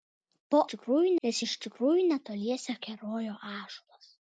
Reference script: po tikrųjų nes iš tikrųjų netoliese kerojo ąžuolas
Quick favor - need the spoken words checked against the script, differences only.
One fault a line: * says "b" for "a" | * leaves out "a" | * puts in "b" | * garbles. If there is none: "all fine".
all fine